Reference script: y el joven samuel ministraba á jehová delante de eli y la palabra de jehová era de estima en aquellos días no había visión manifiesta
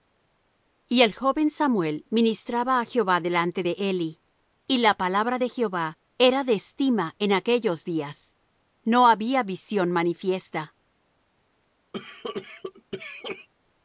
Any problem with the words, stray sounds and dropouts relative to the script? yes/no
yes